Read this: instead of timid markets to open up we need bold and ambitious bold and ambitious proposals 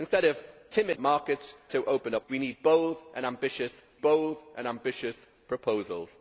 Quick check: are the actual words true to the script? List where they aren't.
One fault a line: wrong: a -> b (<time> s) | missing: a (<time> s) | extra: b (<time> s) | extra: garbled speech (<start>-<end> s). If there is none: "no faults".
no faults